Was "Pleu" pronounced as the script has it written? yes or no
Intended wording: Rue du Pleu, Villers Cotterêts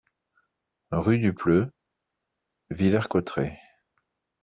yes